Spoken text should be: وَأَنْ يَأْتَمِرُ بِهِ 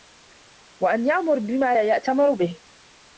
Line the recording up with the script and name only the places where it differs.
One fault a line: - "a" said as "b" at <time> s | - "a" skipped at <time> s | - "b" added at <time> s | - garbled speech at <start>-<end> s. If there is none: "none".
- "يَأْمُرَ بِمَا لَا" added at 1.1 s